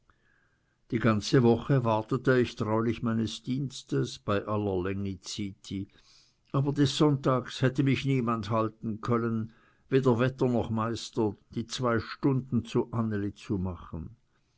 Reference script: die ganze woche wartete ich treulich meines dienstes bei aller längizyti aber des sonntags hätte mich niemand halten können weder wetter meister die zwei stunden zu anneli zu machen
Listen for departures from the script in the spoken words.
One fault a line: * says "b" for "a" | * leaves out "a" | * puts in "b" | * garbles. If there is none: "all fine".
* puts in "noch"